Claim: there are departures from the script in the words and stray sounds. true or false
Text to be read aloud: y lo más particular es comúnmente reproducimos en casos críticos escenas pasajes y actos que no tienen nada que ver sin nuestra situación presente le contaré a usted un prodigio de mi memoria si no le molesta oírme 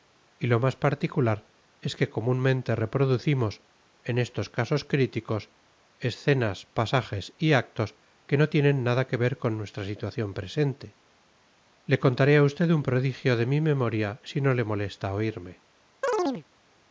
true